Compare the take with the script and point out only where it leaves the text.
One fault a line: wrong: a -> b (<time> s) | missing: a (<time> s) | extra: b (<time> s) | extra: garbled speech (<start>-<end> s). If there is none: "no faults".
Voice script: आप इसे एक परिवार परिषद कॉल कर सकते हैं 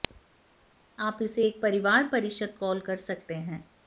no faults